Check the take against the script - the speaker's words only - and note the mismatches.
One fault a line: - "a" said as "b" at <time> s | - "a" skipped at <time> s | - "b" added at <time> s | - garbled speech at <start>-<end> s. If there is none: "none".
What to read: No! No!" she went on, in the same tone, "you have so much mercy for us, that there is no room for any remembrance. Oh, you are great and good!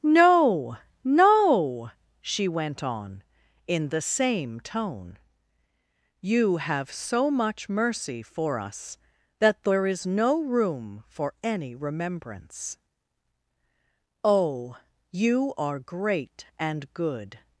none